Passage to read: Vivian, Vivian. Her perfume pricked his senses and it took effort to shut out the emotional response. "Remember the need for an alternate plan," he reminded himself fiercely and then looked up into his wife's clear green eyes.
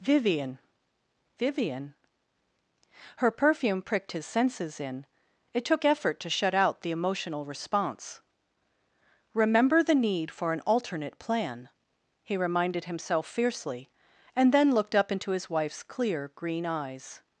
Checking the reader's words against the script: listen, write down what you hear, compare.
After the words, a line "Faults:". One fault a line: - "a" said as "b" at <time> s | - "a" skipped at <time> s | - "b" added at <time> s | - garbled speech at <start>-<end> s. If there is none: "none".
Vivian, Vivian. Her perfume pricked his senses in it took effort to shut out the emotional response. "Remember the need for an alternate plan," he reminded himself fiercely and then looked up into his wife's clear green eyes.
Faults:
- "and" said as "in" at 4.8 s